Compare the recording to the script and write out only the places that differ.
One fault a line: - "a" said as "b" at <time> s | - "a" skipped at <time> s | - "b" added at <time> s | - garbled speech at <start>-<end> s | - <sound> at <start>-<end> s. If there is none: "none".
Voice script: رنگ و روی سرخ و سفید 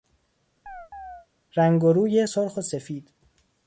- chirp at 0.7-1.3 s